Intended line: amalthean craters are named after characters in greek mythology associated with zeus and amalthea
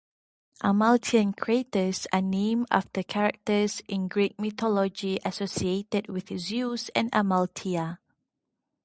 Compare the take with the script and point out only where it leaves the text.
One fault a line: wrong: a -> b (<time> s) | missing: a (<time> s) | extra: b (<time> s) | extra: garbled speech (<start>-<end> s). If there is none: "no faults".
no faults